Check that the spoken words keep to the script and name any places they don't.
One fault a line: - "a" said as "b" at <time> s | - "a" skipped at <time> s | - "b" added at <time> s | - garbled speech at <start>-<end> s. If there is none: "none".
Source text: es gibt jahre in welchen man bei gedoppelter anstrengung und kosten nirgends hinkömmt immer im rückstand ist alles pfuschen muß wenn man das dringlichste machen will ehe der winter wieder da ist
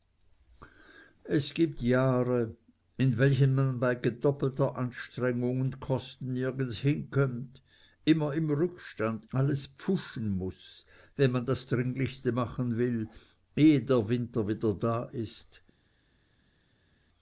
- "ist" skipped at 9.2 s